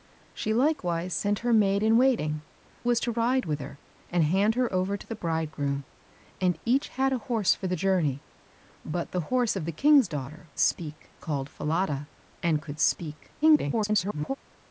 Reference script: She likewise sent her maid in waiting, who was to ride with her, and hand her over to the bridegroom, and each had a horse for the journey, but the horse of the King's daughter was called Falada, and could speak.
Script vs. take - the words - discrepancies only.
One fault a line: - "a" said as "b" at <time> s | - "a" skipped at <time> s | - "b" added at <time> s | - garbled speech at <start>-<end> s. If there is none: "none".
- "who" skipped at 2.4 s
- "was" said as "speak" at 10.6 s
- garbled speech at 13.4-14.4 s